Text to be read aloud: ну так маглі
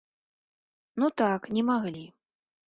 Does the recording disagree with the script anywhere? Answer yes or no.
yes